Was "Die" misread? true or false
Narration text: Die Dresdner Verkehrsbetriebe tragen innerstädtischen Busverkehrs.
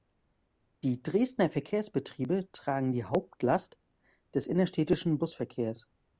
false